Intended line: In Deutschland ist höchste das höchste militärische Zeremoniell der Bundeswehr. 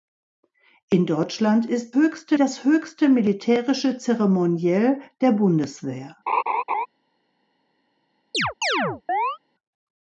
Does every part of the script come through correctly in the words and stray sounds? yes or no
no